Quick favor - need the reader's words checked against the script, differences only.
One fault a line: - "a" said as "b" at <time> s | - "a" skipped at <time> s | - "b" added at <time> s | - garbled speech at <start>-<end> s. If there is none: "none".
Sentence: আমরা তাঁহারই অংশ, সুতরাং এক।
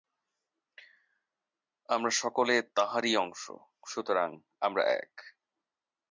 - "সকলে" added at 2.1 s
- "আমরা" added at 4.6 s